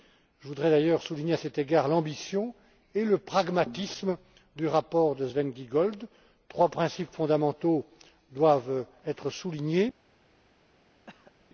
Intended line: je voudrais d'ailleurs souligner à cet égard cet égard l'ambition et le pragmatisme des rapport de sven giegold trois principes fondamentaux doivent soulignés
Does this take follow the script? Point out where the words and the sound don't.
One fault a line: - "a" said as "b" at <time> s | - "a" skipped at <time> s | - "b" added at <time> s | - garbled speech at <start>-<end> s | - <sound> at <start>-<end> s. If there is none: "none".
- "cet égard" skipped at 1.9 s
- "des" said as "du" at 4.5 s
- "être" added at 9.0 s
- cough at 11.1-11.3 s